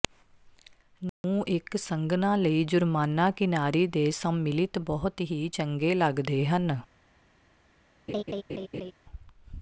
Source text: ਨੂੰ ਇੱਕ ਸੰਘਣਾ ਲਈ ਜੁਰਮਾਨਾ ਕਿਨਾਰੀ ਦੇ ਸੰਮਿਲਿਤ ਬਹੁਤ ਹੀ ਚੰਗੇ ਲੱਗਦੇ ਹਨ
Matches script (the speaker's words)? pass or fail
pass